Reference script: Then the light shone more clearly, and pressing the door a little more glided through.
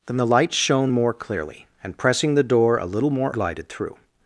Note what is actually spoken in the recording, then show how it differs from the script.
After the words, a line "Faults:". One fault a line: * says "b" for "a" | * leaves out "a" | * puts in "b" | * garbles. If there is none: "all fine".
Then the light shone more clearly, and pressing the door a little more glided through.
Faults:
all fine